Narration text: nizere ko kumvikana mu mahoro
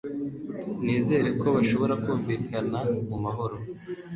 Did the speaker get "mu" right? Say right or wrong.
right